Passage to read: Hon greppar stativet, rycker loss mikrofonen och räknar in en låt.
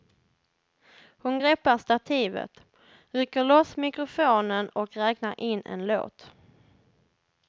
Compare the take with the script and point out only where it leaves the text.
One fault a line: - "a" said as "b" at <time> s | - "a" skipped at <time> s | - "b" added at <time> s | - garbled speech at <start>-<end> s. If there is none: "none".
none